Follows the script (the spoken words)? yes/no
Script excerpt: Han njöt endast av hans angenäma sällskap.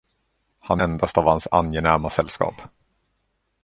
no